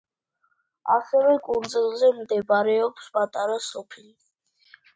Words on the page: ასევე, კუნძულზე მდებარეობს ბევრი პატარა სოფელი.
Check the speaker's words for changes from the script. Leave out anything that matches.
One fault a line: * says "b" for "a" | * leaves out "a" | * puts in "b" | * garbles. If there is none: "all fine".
* leaves out "ბევრი"